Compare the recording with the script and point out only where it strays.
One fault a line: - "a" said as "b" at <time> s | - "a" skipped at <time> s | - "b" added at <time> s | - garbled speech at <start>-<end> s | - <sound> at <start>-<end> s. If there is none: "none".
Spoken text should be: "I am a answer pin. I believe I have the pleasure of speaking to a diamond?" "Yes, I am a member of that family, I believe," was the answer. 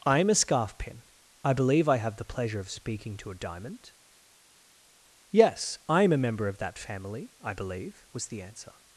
- "answer" said as "scarf" at 0.3 s